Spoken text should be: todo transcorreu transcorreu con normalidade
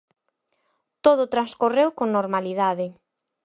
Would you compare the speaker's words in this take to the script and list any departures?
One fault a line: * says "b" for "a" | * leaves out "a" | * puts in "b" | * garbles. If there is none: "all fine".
* leaves out "transcorreu"